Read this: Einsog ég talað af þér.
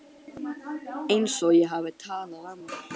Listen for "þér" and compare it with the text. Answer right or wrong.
wrong